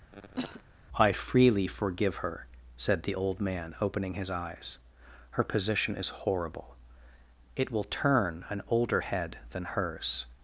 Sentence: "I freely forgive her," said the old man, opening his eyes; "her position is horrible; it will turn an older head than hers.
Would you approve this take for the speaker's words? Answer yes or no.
yes